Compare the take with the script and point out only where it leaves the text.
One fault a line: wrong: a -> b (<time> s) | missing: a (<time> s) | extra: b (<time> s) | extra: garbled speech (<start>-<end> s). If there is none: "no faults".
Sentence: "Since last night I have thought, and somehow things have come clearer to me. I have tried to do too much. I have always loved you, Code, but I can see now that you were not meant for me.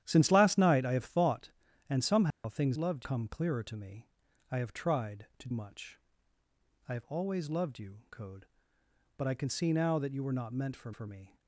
wrong: have -> loved (2.8 s)
missing: do too (5.5 s)
extra: for (10.9 s)